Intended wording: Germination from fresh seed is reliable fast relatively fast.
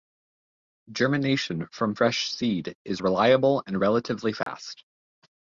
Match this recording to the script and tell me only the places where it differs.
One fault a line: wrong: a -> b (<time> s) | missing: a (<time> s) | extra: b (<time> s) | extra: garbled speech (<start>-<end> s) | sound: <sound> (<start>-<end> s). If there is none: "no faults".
wrong: fast -> and (3.7 s)
sound: dropout (4.4-4.5 s)